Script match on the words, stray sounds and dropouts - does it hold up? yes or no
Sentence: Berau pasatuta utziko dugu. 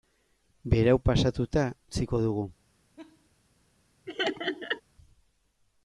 no